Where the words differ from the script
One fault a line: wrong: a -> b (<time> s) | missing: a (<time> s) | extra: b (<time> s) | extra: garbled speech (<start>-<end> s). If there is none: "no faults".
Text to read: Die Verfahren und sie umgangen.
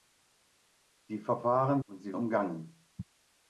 no faults